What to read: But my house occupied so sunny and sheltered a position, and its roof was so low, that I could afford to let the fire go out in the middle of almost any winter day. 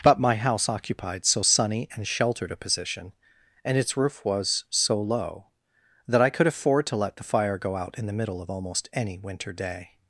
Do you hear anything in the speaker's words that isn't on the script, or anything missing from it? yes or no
no